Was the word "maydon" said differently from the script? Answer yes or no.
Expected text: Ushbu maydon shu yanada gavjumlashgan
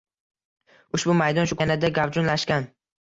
no